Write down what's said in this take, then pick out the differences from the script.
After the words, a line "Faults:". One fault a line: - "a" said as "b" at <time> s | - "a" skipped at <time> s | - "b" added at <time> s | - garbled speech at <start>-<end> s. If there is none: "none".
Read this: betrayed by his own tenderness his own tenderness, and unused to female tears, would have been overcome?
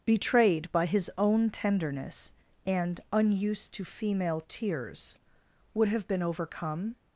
betrayed by his own tenderness, and unused to female tears, would have been overcome?
Faults:
- "his own tenderness" skipped at 2.3 s